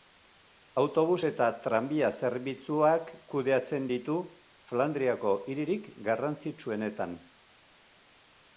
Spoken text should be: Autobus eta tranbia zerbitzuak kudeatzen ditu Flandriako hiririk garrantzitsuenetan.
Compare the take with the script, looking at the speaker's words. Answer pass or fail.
pass